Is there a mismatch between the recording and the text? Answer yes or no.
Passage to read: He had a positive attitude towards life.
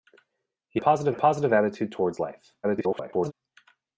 yes